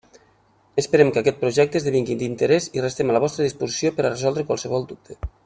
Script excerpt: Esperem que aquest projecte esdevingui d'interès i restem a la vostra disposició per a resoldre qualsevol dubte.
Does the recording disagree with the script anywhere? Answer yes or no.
no